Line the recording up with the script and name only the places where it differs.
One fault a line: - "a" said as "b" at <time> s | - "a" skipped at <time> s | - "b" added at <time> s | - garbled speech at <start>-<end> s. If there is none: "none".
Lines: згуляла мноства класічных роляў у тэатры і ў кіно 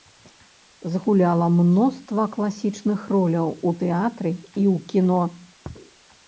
none